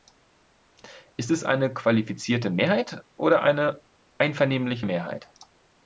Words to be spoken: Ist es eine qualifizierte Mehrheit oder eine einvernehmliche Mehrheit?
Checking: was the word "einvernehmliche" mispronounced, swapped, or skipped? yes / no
no